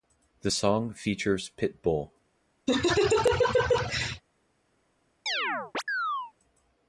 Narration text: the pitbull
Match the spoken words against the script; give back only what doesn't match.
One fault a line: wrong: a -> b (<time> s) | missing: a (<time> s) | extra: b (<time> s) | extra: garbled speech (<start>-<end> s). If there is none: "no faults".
extra: song features (0.5 s)